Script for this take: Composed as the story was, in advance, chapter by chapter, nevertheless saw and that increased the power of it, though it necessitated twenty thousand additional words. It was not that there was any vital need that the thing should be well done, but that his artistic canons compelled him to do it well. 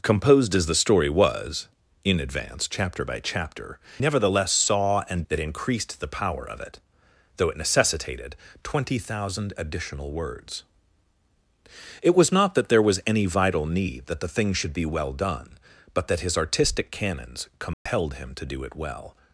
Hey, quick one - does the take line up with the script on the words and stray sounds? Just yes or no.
no